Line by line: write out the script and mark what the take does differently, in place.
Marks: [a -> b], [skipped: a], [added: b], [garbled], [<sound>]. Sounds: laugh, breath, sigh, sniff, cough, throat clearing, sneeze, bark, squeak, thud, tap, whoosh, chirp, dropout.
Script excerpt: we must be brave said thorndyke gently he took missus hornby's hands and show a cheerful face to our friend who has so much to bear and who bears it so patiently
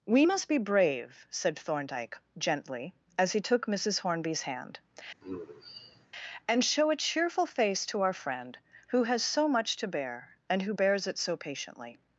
we must be brave said thorndyke gently [added: as] he took missus hornby's [hands -> hand] [sigh] and show a cheerful face to our friend who has so much to bear and who bears it so patiently